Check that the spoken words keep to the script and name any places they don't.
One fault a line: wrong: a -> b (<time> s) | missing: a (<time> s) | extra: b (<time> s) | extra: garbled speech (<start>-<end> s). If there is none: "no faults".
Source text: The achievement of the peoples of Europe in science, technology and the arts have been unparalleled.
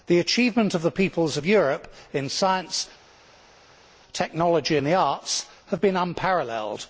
no faults